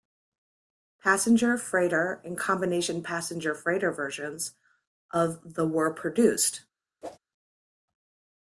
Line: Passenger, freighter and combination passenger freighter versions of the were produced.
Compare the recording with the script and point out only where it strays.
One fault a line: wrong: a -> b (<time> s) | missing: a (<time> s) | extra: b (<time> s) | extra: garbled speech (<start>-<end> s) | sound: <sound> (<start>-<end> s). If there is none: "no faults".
sound: whoosh (7.0-7.2 s)